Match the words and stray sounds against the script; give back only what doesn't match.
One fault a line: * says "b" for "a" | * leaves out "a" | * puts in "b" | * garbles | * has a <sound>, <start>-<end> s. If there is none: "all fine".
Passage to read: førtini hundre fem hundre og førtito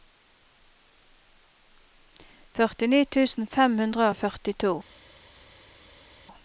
* says "tusen" for "hundre"